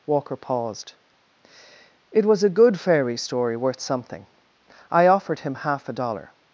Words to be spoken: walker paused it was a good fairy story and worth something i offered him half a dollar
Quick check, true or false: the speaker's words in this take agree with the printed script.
false